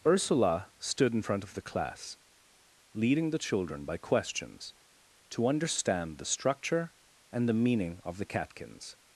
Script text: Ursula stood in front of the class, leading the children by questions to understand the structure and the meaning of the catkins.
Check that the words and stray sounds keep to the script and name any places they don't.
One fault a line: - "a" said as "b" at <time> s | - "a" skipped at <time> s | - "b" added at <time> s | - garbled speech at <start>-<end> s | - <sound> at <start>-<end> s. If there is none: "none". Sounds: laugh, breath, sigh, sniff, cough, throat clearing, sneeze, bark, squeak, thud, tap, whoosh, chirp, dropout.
none